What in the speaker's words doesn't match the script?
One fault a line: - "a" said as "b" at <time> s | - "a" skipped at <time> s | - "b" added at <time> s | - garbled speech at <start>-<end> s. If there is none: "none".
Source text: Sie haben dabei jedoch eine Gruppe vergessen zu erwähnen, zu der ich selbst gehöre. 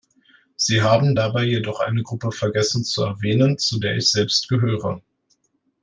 none